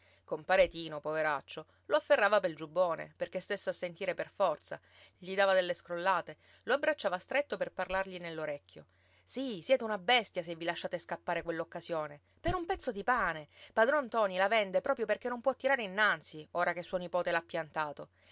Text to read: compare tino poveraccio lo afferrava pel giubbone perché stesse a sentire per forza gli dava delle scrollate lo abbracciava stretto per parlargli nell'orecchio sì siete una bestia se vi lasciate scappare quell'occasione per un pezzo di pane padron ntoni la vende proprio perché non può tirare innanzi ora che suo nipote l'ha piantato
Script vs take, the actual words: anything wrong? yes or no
no